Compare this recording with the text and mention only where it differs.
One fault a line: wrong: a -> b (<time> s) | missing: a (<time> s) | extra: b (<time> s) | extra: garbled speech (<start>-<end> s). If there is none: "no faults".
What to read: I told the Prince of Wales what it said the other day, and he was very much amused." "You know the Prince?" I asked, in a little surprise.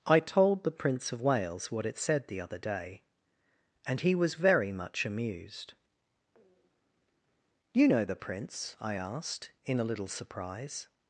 no faults